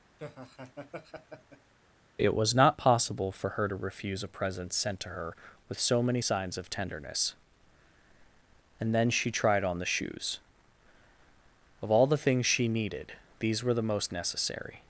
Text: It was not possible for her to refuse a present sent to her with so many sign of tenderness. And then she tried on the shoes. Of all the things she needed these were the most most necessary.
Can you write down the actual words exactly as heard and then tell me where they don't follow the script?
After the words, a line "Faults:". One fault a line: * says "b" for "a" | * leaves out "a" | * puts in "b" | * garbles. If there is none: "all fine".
It was not possible for her to refuse a present sent to her with so many signs of tenderness. And then she tried on the shoes. Of all the things she needed these were the most necessary.
Faults:
* says "signs" for "sign"
* leaves out "most"